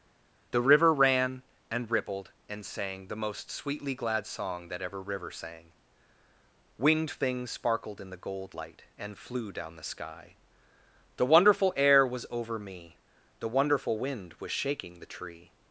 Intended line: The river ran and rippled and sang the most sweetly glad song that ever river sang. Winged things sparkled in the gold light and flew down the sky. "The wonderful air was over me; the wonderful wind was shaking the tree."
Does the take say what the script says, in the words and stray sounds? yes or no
yes